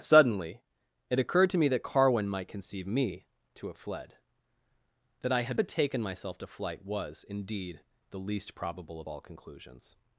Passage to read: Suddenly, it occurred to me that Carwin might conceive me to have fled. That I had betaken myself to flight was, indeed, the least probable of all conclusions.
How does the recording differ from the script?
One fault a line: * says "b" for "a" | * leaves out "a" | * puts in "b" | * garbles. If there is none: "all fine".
all fine